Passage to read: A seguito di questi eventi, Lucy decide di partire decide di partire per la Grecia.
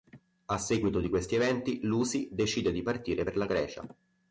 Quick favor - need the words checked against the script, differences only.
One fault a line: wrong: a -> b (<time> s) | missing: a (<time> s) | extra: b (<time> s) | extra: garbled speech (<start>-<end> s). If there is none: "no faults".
missing: decide di partire (3.3 s)